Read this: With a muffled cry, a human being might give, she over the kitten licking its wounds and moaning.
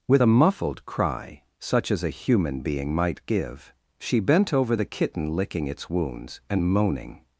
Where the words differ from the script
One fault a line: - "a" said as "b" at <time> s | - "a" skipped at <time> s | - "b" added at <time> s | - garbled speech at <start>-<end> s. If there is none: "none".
- "such as" added at 1.6 s
- "bent" added at 4.2 s